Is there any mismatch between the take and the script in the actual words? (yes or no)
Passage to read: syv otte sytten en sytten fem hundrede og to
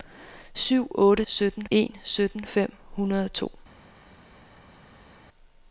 no